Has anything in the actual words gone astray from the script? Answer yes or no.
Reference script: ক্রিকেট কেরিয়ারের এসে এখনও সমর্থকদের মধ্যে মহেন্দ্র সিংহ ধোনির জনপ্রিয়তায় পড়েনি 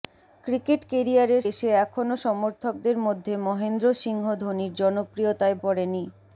no